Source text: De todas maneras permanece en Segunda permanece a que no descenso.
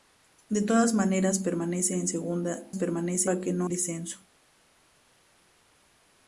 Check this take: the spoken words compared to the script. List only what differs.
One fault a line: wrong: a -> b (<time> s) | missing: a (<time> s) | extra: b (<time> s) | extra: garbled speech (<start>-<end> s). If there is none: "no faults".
no faults